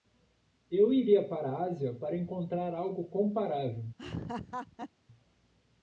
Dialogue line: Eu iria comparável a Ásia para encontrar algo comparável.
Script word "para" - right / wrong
right